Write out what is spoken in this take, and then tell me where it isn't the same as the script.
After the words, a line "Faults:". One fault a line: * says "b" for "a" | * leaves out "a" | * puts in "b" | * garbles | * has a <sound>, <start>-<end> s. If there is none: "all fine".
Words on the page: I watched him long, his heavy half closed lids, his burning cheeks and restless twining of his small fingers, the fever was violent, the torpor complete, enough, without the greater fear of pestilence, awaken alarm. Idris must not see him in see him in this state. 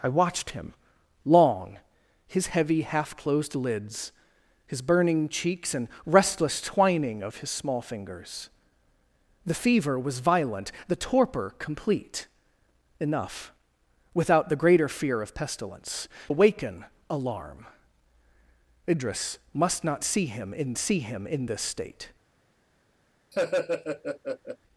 I watched him long, his heavy half closed lids, his burning cheeks and restless twining of his small fingers, the fever was violent, the torpor complete, enough, without the greater fear of pestilence, awaken alarm. Idris must not see him in see him in this state.
Faults:
* has a laugh, 23.3-24.6 s